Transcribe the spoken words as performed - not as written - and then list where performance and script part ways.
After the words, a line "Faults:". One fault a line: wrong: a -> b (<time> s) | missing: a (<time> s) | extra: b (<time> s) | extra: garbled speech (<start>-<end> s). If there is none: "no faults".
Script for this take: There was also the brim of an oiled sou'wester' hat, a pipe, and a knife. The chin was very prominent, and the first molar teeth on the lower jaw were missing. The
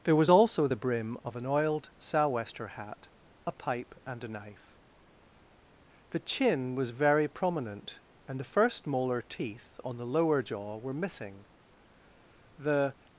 There was also the brim of an oiled sou'wester' hat, a pipe, and a knife. The chin was very prominent, and the first molar teeth on the lower jaw were missing. The
Faults:
no faults